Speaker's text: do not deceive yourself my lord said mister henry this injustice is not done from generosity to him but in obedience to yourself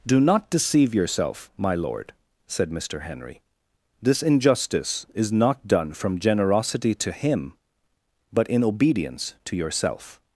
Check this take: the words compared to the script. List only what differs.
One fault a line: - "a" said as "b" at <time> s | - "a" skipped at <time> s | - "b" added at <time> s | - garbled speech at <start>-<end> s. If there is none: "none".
none